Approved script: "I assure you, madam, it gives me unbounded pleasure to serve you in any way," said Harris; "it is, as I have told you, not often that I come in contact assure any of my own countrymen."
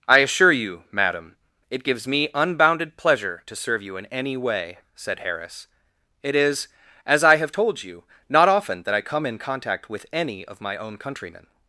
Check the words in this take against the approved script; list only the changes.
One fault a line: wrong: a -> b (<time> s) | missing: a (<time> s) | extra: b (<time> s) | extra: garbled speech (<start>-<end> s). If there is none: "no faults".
wrong: assure -> with (9.9 s)